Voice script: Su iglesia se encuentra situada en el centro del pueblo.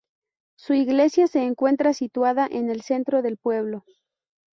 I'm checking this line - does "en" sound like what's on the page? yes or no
yes